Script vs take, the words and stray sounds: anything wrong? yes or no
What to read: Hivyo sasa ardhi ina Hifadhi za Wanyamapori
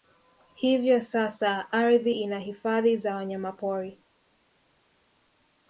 no